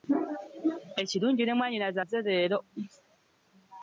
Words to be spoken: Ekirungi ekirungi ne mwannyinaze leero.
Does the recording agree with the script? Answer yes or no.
no